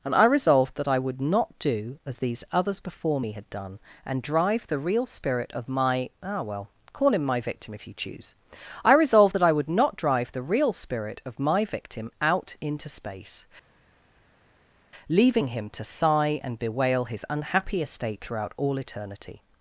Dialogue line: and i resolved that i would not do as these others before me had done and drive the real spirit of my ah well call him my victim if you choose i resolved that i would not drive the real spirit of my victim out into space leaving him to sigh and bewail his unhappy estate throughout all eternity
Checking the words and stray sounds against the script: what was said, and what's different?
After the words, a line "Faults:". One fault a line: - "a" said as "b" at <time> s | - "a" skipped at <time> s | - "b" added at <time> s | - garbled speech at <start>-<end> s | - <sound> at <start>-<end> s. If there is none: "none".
and i resolved that i would not do as these others before me had done and drive the real spirit of my ah well call him my victim if you choose i resolved that i would not drive the real spirit of my victim out into space leaving him to sigh and bewail his unhappy estate throughout all eternity
Faults:
none